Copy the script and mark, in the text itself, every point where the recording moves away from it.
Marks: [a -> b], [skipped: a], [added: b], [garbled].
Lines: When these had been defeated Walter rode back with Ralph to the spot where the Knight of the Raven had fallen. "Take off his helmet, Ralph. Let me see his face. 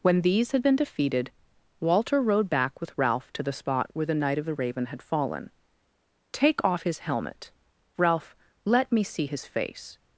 When these had been defeated Walter rode back with Ralph to the spot where the Knight of the Raven had fallen. "Take off his helmet, Ralph. Let me see his face.